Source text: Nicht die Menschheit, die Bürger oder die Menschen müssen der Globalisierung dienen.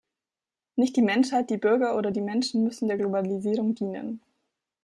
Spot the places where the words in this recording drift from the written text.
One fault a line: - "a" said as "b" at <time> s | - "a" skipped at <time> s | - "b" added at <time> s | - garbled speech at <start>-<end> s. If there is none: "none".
none